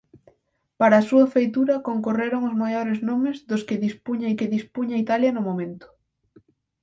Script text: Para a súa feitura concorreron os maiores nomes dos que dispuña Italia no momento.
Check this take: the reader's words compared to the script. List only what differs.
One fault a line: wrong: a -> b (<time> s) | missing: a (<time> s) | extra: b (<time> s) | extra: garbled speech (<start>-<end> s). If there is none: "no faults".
extra: que dispuña (4.4 s)